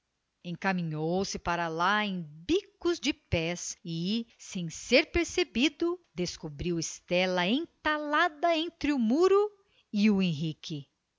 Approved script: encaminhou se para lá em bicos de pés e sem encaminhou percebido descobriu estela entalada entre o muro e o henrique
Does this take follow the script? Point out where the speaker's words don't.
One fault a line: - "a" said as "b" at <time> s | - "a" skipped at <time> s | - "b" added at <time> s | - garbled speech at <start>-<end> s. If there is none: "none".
- "encaminhou" said as "ser" at 4.7 s